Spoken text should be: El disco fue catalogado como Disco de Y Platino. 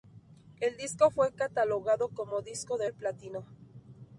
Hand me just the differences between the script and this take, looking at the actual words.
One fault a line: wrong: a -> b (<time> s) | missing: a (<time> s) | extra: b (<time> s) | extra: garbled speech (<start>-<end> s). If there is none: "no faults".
no faults